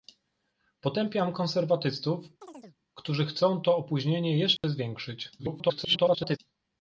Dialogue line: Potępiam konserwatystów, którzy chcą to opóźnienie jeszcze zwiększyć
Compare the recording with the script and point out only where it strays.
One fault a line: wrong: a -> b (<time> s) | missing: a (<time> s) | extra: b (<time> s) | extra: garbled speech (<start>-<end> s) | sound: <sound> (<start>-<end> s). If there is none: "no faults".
sound: chirp (2.4-2.8 s)
sound: dropout (4.6-4.6 s)
extra: garbled speech (5.4-6.4 s)